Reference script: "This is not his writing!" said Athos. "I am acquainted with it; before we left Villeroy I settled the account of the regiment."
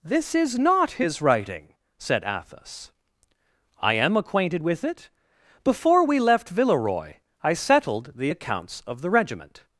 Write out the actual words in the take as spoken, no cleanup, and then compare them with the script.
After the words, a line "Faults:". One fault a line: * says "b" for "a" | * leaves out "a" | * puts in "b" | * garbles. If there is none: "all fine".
"This is not his writing!" said Athos. "I am acquainted with it; before we left Villeroy I settled the accounts of the regiment."
Faults:
* says "accounts" for "account"